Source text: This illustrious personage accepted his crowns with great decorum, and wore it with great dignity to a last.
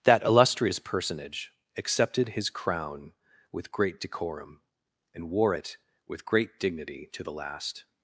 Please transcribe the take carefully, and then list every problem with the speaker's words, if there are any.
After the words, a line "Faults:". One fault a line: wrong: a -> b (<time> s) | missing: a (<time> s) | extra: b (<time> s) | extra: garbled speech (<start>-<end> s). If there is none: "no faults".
That illustrious personage accepted his crown with great decorum, and wore it with great dignity to the last.
Faults:
wrong: This -> That (0.0 s)
wrong: crowns -> crown (2.5 s)
wrong: a -> the (7.2 s)